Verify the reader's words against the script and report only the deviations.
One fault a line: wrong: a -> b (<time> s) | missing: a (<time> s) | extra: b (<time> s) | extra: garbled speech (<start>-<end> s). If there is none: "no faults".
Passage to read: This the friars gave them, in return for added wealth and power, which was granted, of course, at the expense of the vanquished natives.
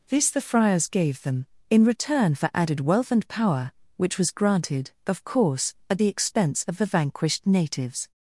no faults